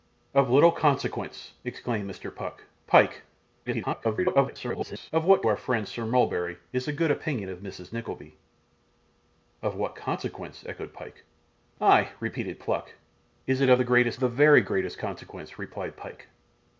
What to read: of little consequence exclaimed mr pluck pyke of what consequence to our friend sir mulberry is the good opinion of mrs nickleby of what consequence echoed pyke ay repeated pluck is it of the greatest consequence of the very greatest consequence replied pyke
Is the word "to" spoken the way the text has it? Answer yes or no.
no